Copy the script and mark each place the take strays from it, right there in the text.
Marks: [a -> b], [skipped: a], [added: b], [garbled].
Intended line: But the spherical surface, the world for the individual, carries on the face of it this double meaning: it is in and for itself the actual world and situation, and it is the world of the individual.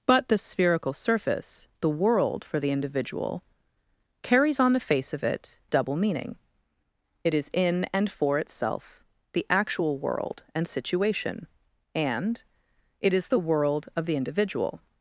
But the spherical surface, the world for the individual, carries on the face of it [skipped: this] double meaning: it is in and for itself the actual world and situation, and it is the world of the individual.